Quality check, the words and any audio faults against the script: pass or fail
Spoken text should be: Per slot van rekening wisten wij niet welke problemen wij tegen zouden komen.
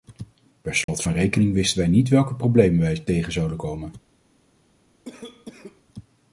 fail